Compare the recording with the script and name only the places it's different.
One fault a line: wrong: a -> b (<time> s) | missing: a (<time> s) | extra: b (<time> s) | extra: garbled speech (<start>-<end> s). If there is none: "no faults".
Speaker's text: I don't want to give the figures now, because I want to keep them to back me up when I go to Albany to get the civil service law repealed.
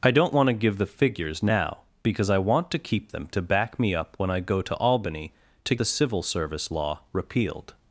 missing: get (5.8 s)